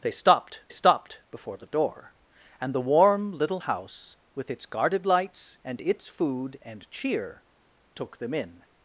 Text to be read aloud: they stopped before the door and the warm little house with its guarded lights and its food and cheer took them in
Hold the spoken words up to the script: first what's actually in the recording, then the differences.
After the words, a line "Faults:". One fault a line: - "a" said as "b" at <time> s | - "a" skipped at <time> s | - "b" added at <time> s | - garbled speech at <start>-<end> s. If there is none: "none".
they stopped stopped before the door and the warm little house with its guarded lights and its food and cheer took them in
Faults:
- "stopped" added at 0.7 s